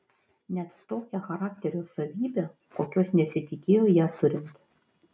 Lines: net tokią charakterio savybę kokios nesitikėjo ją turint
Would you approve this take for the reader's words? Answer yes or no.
yes